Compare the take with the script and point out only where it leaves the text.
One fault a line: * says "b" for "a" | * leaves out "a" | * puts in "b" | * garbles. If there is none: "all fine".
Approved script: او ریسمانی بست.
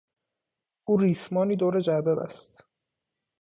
* puts in "دور جعبه"